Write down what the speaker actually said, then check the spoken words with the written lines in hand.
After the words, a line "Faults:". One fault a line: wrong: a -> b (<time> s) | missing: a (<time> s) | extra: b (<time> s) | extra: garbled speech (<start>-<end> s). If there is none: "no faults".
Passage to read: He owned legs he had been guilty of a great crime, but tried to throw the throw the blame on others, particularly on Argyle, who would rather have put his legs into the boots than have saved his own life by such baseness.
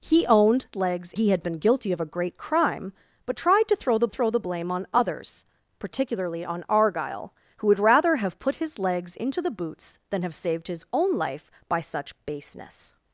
He owned legs he had been guilty of a great crime, but tried to throw the throw the blame on others, particularly on Argyle, who would rather have put his legs into the boots than have saved his own life by such baseness.
Faults:
no faults